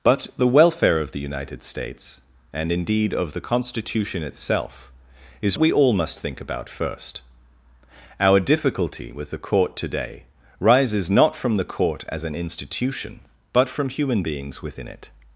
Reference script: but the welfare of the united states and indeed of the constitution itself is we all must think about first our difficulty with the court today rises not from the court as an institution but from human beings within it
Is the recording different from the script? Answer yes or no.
no